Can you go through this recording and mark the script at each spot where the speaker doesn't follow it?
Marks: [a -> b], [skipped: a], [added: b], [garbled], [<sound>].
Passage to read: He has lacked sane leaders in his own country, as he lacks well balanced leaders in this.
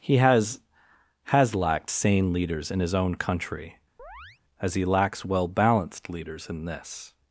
He has [added: has] lacked sane leaders in his own country, [chirp] as he lacks well balanced leaders in this.